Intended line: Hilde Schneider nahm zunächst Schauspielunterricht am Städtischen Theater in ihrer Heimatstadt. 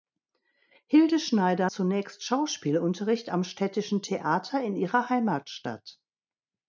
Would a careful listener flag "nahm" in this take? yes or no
yes